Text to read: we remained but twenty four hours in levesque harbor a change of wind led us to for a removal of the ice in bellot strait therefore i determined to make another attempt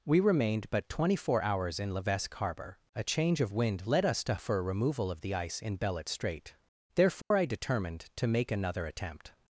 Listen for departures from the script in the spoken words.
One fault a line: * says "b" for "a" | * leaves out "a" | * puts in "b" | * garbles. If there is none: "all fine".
all fine